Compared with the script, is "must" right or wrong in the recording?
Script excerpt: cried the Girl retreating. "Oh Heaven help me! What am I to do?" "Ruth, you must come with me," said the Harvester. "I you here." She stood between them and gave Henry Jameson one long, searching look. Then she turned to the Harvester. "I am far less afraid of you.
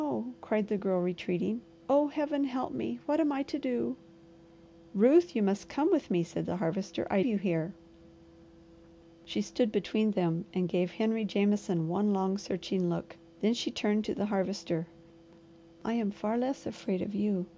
right